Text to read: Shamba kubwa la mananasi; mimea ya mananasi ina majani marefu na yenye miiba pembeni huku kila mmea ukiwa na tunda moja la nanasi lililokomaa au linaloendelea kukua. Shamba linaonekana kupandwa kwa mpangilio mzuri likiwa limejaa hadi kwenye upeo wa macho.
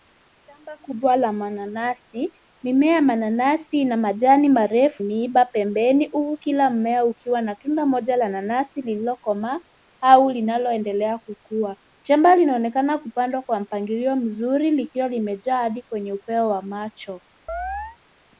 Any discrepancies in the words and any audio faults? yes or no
yes